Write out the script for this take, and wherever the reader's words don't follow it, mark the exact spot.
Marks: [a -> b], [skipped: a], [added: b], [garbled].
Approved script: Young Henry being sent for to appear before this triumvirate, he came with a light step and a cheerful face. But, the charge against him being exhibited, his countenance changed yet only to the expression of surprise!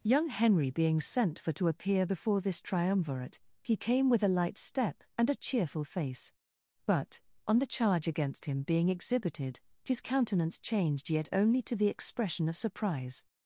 Young Henry being sent for to appear before this triumvirate, he came with a light step and a cheerful face. But, [added: on] the charge against him being exhibited, his countenance changed yet only to the expression of surprise!